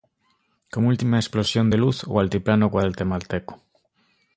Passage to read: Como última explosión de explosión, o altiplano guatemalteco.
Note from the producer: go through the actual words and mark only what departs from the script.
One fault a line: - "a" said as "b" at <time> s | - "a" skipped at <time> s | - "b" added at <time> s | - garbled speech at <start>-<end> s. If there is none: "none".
- "explosión" said as "luz" at 1.8 s